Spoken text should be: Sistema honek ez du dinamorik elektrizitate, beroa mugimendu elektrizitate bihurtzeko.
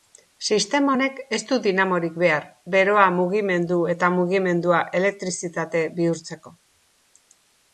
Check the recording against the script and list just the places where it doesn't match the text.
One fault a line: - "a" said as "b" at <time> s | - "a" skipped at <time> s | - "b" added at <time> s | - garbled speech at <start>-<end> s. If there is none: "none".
- "elektrizitate" said as "behar" at 2.2 s
- "eta mugimendua" added at 4.0 s